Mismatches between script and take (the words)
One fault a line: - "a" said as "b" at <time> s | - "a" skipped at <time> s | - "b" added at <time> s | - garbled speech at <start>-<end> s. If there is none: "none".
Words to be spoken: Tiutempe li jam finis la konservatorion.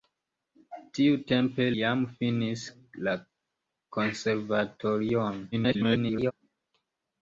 - "li" skipped at 1.7 s
- garbled speech at 5.5-6.3 s